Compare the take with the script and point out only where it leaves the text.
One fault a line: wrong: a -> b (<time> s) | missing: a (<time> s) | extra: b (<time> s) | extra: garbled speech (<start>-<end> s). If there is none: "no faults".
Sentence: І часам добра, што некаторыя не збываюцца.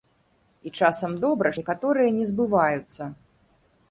missing: што (1.5 s)